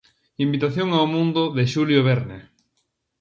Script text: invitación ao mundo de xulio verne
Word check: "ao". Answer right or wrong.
right